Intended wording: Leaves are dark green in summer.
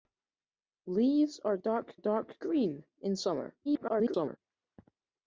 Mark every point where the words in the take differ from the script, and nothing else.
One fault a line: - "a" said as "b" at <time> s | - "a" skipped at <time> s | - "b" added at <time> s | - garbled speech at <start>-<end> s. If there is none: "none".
- "dark" added at 1.9 s
- garbled speech at 3.7-4.4 s